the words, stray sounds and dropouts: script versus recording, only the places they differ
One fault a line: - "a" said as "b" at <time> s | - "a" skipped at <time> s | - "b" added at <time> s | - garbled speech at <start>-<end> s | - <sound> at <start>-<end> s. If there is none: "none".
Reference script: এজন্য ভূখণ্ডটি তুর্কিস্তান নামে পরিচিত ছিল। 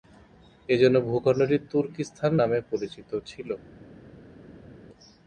none